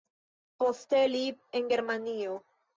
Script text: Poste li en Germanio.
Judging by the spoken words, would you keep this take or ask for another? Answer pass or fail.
pass